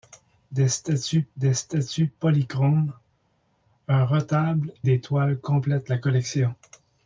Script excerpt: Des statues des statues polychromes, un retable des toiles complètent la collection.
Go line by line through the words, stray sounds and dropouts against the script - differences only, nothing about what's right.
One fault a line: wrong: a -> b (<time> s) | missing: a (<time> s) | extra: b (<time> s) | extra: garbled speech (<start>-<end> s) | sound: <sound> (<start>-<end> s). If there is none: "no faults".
no faults